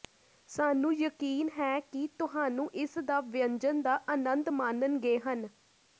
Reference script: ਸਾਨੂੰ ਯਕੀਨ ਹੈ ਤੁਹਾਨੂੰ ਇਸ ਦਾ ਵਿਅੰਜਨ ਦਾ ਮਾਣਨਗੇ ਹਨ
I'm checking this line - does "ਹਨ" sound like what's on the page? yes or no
yes